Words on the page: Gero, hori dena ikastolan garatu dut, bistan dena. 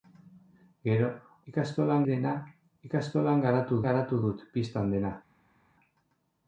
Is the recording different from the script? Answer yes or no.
yes